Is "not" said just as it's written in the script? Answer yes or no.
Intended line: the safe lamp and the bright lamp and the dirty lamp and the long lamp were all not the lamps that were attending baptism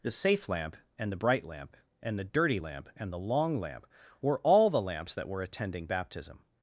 no